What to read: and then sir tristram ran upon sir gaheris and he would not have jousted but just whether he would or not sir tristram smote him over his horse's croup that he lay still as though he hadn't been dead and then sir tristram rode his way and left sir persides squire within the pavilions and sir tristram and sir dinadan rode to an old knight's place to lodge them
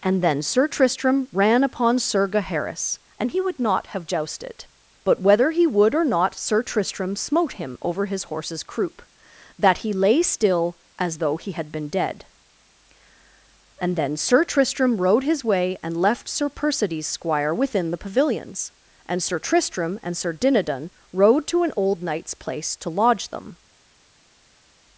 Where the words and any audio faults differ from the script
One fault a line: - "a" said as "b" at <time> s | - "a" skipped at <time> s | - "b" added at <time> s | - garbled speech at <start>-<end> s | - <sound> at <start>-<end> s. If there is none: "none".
- "just" skipped at 5.2 s
- "hadn't" said as "had" at 11.5 s